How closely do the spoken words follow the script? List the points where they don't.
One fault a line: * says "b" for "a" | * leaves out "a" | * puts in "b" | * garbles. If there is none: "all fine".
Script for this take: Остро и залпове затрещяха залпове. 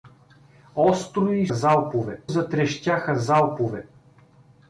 all fine